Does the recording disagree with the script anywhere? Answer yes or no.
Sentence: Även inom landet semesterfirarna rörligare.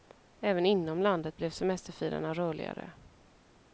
yes